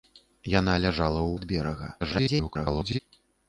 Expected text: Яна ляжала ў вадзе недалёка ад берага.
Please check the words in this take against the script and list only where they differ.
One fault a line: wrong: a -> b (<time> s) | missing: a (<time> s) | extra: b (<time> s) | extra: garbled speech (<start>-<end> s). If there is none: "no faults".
missing: вадзе недалёка (1.3 s)
extra: garbled speech (2.0-3.0 s)